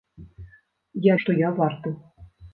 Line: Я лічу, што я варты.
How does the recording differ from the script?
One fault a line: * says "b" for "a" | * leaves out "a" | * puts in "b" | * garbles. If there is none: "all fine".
* leaves out "лічу"